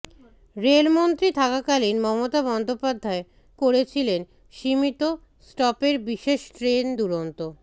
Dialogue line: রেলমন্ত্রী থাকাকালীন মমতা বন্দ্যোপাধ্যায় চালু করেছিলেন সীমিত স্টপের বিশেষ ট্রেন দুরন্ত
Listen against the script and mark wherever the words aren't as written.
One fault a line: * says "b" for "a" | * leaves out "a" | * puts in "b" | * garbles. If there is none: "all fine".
* leaves out "চালু"